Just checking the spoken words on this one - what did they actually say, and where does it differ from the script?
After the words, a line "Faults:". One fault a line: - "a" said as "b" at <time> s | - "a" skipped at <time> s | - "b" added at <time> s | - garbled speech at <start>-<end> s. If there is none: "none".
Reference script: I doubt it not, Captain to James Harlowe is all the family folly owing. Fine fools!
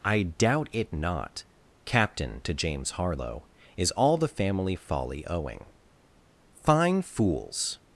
I doubt it not, Captain to James Harlowe is all the family folly owing. Fine fools!
Faults:
none